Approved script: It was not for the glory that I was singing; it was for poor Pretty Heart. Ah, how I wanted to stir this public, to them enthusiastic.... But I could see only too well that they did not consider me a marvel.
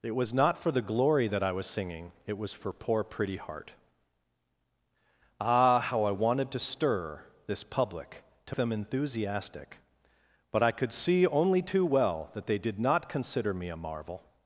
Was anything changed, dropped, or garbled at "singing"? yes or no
no